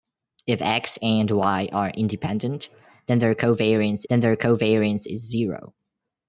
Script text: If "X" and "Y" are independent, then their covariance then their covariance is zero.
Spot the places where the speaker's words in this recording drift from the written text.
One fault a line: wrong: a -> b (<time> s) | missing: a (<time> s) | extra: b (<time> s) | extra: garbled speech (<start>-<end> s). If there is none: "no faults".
no faults